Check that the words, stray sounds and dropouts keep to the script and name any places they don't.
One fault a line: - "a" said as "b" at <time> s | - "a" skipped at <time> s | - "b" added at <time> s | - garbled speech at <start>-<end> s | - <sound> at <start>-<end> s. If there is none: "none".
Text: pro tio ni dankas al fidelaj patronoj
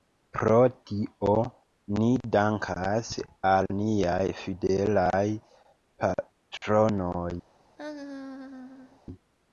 - "niaj" added at 3.8 s
- laugh at 7.8-9.0 s